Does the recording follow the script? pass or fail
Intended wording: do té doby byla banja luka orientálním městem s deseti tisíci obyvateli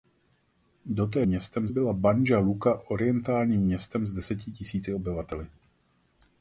fail